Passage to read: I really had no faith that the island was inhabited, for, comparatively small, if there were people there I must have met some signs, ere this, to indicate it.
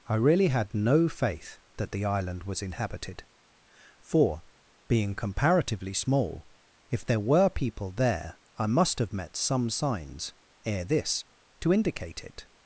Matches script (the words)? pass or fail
fail